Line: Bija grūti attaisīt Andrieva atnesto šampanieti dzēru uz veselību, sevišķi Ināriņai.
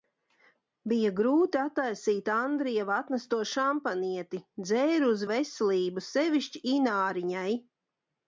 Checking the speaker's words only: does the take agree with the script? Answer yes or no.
yes